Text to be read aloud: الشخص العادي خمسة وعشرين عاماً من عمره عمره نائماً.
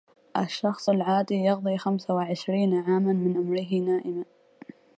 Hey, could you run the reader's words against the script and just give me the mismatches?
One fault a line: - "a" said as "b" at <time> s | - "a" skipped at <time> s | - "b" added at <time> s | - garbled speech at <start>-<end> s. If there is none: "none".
- "يقضي" added at 1.3 s
- "عمره" skipped at 3.7 s